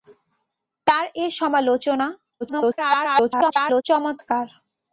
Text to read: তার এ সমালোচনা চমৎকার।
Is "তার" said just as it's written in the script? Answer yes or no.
yes